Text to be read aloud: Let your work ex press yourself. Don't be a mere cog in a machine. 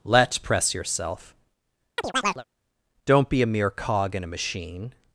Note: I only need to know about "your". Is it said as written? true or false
false